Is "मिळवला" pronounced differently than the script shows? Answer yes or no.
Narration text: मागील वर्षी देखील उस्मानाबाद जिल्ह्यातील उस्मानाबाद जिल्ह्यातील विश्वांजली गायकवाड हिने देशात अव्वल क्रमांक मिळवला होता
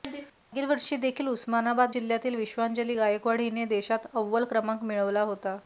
no